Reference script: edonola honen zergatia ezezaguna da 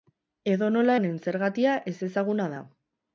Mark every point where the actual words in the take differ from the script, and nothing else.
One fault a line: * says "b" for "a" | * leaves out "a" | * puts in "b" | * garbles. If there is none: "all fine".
all fine